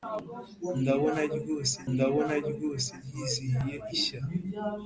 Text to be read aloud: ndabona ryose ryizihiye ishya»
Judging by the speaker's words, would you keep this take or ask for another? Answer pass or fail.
fail